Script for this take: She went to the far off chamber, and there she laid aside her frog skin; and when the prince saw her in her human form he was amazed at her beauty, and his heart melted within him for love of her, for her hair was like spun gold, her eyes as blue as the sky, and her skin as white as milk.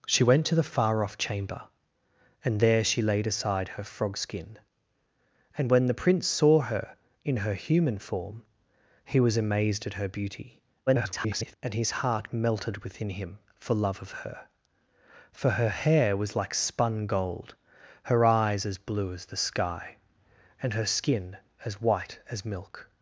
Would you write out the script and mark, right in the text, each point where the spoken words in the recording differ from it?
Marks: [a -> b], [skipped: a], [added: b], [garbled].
She went to the far off chamber, and there she laid aside her frog skin; and when the prince saw her in her human form he was amazed at her beauty, [garbled] and his heart melted within him for love of her, for her hair was like spun gold, her eyes as blue as the sky, and her skin as white as milk.